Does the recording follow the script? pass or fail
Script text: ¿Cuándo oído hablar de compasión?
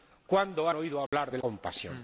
pass